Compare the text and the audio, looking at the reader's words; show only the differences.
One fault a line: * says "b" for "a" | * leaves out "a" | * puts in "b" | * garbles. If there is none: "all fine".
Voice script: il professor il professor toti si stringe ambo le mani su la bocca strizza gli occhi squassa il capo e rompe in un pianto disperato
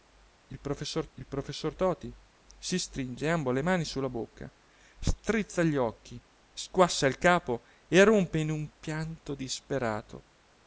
all fine